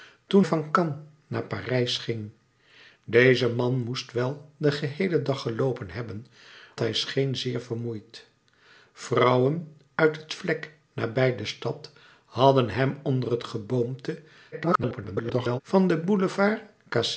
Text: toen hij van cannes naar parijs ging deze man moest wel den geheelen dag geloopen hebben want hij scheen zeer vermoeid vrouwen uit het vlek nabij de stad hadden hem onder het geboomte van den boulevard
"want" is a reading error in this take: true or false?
true